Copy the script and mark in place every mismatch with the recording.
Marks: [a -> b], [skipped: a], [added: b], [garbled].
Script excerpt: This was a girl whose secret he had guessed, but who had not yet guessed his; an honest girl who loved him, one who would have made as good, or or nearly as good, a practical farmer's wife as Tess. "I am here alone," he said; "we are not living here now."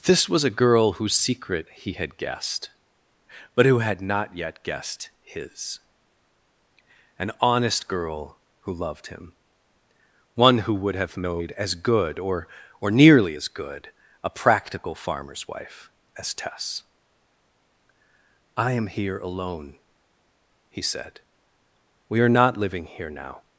This was a girl whose secret he had guessed, but who had not yet guessed his; an honest girl who loved him, one who would have made as good, or or nearly as good, a practical farmer's wife as Tess. "I am here alone," he said; "we are not living here now."